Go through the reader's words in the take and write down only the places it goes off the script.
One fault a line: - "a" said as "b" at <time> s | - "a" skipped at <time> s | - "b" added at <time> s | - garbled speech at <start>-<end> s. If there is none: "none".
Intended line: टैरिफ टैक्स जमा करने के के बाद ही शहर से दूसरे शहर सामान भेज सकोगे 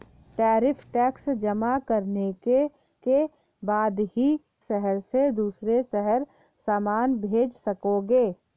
none